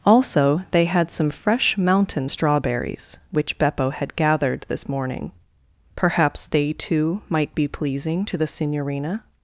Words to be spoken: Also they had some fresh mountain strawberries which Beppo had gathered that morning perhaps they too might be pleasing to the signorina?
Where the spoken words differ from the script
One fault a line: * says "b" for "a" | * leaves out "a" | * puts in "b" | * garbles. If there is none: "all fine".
* says "this" for "that"